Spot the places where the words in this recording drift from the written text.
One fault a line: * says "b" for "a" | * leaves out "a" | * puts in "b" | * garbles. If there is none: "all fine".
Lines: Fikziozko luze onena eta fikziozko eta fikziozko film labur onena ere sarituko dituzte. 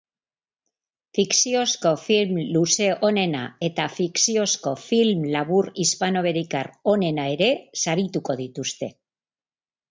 * puts in "film"
* leaves out "eta fikziozko"
* puts in "hispanoamerikar"